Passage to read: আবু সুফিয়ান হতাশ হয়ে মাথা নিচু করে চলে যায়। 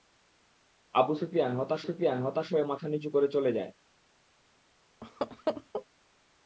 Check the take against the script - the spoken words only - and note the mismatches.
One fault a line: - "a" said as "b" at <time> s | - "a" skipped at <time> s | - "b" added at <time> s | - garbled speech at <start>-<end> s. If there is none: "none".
- "সুফিয়ান হতাশ" added at 1.8 s